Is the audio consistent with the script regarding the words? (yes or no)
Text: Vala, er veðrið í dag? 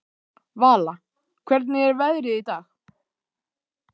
no